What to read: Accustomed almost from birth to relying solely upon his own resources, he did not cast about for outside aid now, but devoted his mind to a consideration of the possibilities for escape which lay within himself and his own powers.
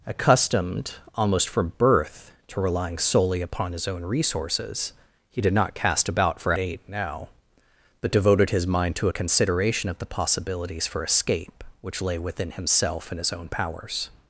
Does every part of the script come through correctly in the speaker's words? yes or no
no